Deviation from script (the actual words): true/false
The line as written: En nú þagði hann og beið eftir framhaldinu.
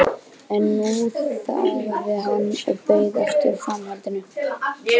false